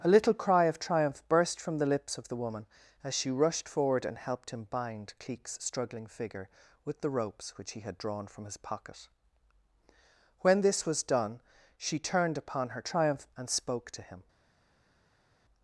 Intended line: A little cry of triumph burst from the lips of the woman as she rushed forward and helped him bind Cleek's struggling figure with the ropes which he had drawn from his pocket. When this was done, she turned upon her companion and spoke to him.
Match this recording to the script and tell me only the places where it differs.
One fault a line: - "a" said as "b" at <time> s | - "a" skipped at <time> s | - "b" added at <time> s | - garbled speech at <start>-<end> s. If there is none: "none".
- "companion" said as "triumph" at 12.8 s